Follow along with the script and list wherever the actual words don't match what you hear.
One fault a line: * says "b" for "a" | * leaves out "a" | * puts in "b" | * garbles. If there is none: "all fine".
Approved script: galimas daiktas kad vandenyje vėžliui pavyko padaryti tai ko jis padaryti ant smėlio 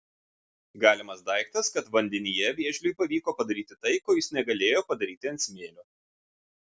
* puts in "negalėjo"